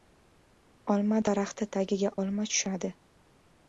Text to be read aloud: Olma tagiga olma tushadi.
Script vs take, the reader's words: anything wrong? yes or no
yes